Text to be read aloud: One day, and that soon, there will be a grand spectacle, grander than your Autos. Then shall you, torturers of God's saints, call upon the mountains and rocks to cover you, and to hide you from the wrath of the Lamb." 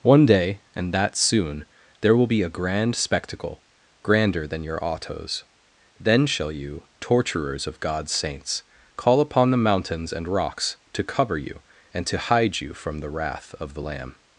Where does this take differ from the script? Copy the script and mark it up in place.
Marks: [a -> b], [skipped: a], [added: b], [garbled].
One day, and that soon, there will be a grand spectacle, grander than your Autos. Then shall you, torturers of God's saints, call upon the mountains and rocks to cover you, and to hide you from the wrath of the Lamb."